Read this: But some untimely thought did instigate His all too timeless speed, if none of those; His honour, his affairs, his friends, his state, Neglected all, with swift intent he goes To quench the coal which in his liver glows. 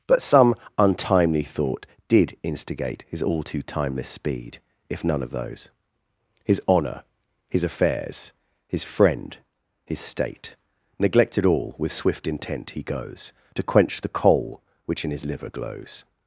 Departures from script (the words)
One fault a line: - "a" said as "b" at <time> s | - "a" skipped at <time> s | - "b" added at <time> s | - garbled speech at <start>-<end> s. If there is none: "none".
- "friends" said as "friend" at 8.8 s